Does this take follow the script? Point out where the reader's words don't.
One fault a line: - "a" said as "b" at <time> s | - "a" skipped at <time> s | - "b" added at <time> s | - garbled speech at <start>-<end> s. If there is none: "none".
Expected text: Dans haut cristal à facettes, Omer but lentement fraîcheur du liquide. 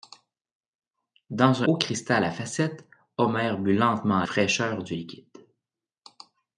none